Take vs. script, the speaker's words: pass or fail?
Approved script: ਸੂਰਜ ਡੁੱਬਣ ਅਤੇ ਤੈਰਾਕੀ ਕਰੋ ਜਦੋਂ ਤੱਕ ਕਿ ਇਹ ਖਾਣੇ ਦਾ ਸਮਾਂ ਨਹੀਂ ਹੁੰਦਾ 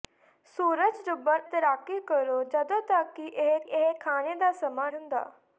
fail